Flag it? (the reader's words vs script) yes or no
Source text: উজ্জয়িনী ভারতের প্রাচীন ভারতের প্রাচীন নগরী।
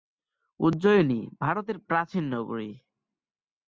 yes